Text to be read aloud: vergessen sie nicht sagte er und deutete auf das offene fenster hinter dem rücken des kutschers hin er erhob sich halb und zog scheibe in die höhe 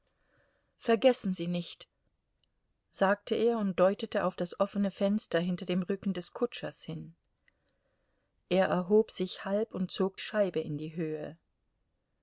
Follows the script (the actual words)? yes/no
yes